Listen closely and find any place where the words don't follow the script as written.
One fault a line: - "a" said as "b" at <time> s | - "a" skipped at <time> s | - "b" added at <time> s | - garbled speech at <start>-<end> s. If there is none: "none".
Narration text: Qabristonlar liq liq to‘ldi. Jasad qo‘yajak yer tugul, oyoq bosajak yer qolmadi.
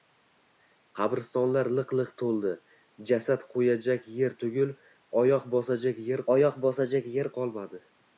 - "oyoq bosajak yer" added at 6.4 s